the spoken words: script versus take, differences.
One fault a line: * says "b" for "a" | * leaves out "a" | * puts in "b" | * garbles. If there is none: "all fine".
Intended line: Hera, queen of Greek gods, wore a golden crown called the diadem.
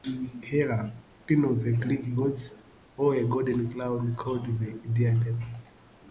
* puts in "the"